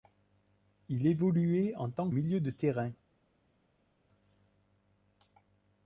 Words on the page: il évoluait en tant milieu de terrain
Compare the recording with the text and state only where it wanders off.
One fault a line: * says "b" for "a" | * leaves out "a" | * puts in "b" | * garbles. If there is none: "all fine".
all fine